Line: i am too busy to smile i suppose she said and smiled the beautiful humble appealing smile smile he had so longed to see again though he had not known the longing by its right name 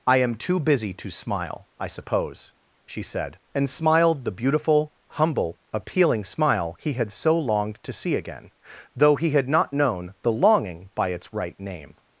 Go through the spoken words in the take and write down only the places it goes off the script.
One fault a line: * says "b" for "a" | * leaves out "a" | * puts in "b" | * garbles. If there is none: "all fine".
* leaves out "smile"